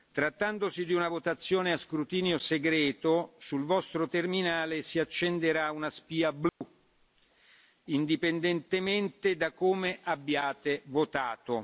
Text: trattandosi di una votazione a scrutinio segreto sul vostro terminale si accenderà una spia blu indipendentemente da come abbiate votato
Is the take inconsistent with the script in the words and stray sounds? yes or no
yes